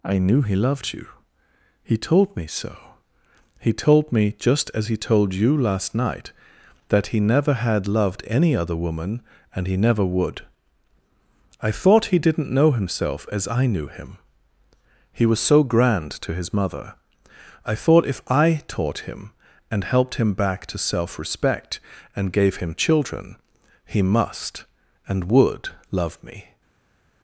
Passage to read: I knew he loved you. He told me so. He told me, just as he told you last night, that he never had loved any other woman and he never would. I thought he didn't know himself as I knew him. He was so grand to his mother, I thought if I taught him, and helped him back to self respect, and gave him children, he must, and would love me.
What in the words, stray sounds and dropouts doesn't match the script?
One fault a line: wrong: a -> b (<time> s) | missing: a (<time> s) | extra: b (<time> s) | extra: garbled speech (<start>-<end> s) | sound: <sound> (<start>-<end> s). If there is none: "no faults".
no faults